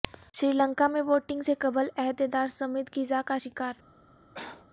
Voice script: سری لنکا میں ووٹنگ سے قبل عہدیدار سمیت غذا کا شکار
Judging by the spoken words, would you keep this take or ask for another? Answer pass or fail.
pass